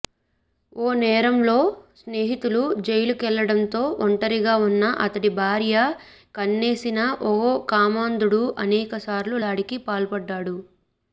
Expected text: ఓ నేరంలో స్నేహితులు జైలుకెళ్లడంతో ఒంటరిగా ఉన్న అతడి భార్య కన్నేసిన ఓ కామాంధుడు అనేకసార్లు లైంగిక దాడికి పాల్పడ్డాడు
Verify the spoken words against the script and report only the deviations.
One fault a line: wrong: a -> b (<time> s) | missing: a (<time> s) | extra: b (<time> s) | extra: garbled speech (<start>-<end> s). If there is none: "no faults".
missing: లైంగిక (9.4 s)